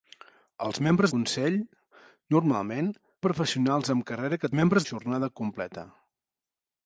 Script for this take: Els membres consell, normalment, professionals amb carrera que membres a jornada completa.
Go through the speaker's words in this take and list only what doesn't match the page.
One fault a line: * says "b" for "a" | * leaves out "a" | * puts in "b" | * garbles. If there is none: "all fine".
all fine